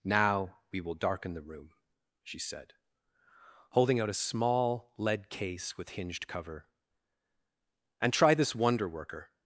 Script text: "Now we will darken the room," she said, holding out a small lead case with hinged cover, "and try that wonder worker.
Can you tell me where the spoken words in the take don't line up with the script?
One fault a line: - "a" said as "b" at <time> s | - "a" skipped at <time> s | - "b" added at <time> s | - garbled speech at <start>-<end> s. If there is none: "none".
- "that" said as "this" at 8.3 s